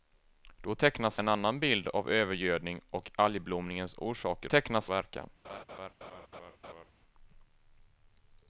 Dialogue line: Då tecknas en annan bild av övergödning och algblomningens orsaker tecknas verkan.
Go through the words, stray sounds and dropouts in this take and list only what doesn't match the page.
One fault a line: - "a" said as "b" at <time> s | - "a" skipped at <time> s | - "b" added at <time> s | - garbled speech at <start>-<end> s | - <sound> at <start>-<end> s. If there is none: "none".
- laugh at 5.4-6.9 s